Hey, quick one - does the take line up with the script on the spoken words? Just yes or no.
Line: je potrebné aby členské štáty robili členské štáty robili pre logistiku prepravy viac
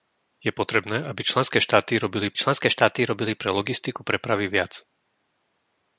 yes